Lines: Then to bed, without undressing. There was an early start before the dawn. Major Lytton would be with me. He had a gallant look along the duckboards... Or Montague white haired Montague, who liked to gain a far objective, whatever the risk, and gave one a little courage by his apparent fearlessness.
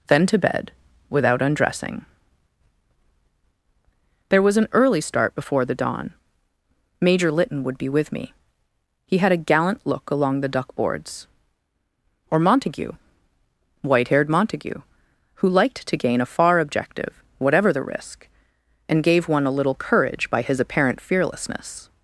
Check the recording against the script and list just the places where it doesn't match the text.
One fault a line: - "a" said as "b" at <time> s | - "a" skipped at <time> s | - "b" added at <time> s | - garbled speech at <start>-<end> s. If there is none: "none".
none